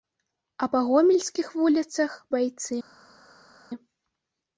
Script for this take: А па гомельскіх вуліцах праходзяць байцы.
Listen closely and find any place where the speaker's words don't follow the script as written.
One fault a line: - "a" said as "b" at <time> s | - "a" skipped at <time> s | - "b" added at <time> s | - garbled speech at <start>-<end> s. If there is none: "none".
- "праходзяць" skipped at 2.1 s